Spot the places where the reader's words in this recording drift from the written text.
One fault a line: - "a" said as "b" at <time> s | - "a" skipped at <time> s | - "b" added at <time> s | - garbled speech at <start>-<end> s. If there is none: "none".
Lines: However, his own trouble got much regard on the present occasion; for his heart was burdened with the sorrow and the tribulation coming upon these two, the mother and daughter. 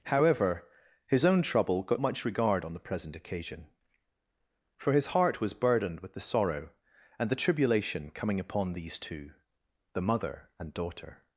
none